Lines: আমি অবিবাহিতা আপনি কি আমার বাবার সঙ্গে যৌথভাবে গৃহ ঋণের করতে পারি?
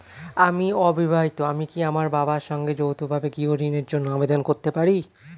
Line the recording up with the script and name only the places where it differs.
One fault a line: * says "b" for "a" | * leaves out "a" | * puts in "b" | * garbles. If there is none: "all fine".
* says "আমি" for "আপনি"
* puts in "জন্য আবেদন"